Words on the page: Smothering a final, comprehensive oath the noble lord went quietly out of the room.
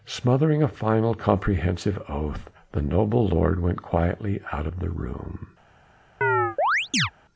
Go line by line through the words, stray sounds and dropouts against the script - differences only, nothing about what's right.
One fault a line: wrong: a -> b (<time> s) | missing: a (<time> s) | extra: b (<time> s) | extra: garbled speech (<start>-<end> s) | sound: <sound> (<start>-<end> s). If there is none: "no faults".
sound: chirp (6.2-7.1 s)